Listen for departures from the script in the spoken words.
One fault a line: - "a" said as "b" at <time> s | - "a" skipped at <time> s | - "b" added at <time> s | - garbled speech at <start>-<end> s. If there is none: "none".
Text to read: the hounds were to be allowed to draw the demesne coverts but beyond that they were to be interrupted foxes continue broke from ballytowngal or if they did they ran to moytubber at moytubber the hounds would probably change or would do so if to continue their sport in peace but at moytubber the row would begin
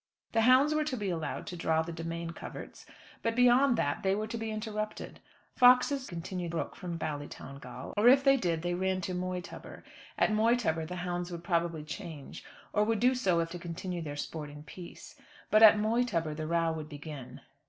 none